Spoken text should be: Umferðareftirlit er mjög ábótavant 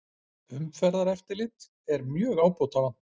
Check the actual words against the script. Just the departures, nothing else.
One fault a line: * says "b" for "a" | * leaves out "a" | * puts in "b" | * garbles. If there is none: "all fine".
all fine